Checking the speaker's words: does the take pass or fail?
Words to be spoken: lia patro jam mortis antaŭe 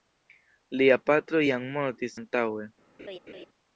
pass